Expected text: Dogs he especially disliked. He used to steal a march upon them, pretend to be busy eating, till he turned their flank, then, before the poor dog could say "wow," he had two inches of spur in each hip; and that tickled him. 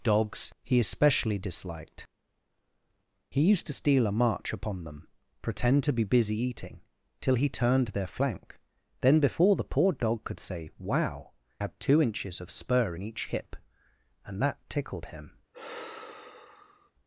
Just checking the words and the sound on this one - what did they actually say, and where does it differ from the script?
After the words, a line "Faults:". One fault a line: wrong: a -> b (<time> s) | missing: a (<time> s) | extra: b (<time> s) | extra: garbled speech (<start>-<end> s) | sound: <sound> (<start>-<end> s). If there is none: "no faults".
Dogs he especially disliked. He used to steal a march upon them, pretend to be busy eating, till he turned their flank, then, before the poor dog could say "wow," had two inches of spur in each hip; and that tickled him.
Faults:
missing: he (11.3 s)
sound: sigh (15.5-16.9 s)